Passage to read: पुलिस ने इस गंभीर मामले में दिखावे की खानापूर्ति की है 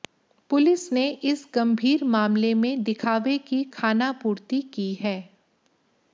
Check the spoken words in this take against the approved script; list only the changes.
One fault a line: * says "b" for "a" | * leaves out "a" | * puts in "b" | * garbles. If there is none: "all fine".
all fine